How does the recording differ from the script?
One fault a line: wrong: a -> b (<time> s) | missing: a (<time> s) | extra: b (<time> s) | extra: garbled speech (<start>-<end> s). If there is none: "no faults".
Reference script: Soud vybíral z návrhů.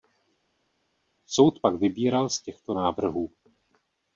extra: pak (1.6 s)
extra: těchto (2.4 s)